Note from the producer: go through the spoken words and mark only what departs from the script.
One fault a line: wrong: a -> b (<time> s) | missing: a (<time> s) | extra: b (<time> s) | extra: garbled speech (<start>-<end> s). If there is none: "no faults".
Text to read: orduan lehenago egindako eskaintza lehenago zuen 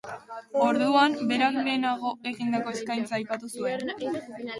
extra: berak (1.3 s)
wrong: lehenago -> aipatu (3.2 s)